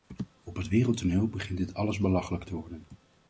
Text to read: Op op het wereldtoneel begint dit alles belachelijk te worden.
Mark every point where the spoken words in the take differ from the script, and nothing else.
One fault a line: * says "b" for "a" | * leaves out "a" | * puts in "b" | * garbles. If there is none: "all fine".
* leaves out "op"